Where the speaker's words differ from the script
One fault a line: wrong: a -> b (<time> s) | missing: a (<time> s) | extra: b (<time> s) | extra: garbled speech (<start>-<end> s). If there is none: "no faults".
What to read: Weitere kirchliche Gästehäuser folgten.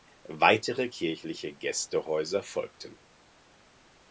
no faults